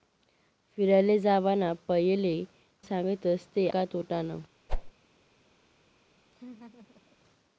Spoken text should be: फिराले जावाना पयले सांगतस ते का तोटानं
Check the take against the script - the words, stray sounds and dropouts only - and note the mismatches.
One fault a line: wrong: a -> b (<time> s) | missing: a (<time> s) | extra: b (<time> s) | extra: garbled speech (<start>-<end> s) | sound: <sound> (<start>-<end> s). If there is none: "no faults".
sound: whoosh (4.7-4.9 s)
sound: laugh (6.3-7.2 s)